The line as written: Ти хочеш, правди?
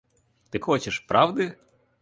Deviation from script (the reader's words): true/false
false